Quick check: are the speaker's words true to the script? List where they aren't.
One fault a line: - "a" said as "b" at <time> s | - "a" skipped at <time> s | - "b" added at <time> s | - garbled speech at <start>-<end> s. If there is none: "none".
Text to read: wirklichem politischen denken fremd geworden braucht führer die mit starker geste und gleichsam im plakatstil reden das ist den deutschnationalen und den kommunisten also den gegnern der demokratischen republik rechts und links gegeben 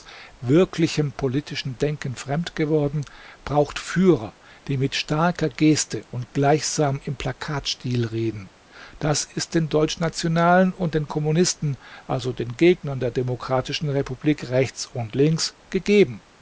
none